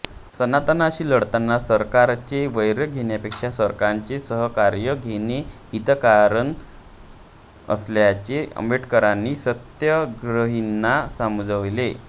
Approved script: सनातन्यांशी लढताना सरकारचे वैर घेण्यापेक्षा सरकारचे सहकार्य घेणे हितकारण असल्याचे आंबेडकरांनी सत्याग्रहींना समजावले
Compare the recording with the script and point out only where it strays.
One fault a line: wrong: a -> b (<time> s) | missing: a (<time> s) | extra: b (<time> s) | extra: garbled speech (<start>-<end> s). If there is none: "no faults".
no faults